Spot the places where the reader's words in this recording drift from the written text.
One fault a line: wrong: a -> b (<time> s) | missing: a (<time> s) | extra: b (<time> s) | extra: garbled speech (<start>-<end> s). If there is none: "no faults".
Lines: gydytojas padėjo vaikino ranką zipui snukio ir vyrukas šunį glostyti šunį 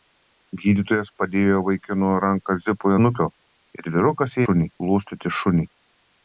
no faults